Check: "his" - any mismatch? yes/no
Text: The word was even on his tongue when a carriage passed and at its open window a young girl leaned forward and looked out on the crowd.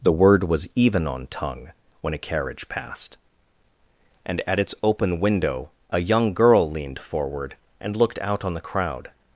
yes